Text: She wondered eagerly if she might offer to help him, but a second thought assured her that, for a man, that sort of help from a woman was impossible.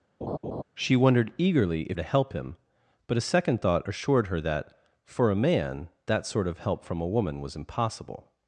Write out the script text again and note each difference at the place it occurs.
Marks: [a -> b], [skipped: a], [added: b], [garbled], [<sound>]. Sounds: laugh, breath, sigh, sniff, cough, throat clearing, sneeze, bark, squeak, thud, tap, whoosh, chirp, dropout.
[laugh] She wondered eagerly if [skipped: she might offer] to help him, but a second thought assured her that, for a man, that sort of help from a woman was impossible.